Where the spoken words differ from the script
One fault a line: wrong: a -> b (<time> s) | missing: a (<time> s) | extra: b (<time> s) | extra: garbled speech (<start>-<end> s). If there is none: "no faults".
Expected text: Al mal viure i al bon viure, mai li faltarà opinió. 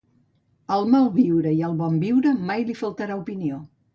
no faults